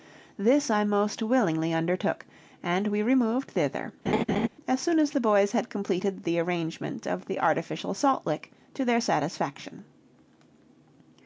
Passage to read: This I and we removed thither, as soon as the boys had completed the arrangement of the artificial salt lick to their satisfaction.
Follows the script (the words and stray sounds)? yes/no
no